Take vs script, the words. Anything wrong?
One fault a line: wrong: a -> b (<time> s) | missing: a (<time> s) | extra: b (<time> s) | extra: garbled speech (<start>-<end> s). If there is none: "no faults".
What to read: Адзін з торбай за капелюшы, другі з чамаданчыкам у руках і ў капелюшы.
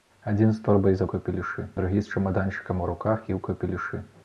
no faults